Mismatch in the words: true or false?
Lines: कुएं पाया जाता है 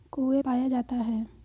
false